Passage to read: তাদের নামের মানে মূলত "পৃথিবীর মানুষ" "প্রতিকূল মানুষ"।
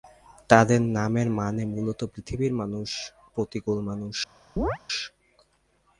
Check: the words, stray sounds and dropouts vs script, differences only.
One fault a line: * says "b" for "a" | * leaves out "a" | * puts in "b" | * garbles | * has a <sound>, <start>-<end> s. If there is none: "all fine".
* has a chirp, 4.6-4.8 s